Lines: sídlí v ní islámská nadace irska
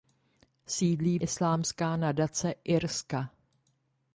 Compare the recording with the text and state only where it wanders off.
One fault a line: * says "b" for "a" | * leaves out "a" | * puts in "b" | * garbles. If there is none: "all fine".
* leaves out "ní"